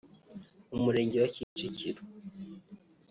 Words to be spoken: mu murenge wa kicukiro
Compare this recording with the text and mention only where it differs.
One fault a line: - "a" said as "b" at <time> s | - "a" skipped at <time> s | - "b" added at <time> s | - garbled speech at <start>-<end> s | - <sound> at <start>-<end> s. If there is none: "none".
- dropout at 1.4-1.6 s